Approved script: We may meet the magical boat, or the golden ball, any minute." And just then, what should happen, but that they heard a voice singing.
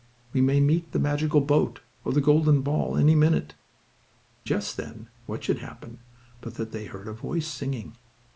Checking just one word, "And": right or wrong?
wrong